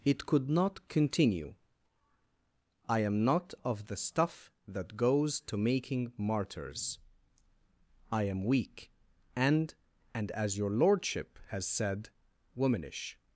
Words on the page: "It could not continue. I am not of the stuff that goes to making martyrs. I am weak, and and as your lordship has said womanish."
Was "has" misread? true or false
false